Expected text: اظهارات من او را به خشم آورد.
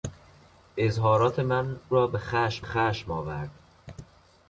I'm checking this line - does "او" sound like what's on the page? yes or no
no